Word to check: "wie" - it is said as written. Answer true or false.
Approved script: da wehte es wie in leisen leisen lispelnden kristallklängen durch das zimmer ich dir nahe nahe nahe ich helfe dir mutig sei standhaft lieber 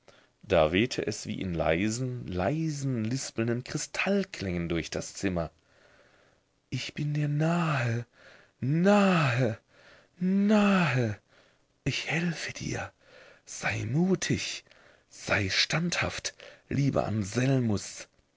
true